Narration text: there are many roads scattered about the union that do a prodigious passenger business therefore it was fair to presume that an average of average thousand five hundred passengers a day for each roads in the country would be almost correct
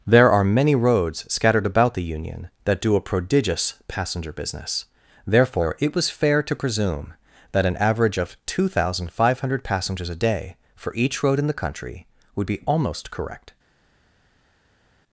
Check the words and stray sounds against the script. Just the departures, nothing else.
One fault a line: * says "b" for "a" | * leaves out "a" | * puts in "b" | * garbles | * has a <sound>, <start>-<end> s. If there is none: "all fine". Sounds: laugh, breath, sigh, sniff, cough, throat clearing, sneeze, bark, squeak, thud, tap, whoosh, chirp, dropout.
* says "two" for "average"
* says "road" for "roads"